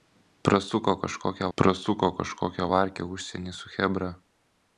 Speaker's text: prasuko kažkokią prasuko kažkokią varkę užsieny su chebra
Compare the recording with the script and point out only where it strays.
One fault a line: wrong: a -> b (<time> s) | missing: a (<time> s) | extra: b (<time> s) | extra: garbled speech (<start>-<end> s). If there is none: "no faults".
no faults